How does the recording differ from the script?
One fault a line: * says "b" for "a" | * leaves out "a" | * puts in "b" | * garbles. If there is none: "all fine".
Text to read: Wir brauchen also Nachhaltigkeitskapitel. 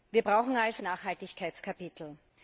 all fine